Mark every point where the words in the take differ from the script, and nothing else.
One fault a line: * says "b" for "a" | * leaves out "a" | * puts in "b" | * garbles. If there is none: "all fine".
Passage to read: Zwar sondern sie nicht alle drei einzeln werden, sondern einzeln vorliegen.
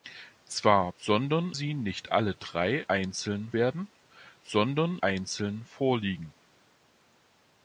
all fine